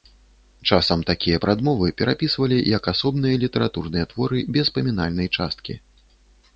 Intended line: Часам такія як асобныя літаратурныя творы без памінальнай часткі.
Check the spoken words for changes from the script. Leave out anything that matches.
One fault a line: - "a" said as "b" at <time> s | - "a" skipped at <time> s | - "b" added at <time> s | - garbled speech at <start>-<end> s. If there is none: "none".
- "прадмовы перапісвалі" added at 1.4 s